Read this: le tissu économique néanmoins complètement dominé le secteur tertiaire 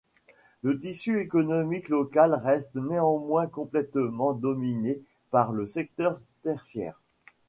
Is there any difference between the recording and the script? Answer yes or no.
yes